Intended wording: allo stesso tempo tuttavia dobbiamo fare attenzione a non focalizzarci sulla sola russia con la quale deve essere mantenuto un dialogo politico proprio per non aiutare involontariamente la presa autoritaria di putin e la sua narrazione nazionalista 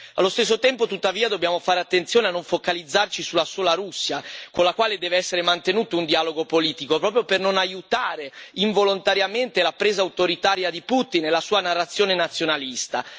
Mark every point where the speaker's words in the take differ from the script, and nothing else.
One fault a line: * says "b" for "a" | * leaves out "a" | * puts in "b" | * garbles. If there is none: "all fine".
all fine